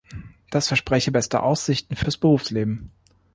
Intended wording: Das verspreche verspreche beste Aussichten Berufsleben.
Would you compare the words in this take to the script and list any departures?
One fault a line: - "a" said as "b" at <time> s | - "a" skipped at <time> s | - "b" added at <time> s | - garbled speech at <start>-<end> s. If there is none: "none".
- "verspreche" skipped at 1.1 s
- "fürs" added at 1.9 s